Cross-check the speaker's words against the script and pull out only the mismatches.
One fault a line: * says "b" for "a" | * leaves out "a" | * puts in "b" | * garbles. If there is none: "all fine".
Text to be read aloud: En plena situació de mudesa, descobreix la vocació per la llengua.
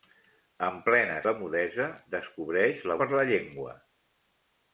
* leaves out "situació"
* leaves out "vocació"